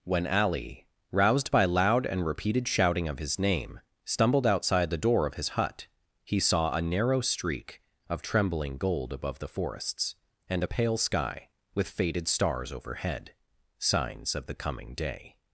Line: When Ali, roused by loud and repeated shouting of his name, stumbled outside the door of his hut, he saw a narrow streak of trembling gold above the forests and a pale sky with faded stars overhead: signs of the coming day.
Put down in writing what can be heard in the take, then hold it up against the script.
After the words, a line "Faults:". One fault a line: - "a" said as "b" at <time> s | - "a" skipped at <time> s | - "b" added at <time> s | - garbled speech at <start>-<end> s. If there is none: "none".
When Ali, roused by loud and repeated shouting of his name, stumbled outside the door of his hut, he saw a narrow streak of trembling gold above the forests and a pale sky with faded stars overhead: signs of the coming day.
Faults:
none